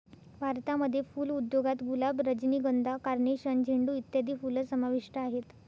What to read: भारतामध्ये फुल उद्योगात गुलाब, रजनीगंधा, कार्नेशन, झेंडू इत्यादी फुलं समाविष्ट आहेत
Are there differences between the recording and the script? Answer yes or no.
no